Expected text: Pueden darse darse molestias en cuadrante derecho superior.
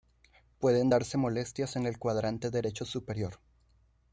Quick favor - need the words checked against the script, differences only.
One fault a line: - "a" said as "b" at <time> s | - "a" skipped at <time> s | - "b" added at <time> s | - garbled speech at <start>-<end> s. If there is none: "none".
- "darse" skipped at 1.2 s
- "el" added at 1.9 s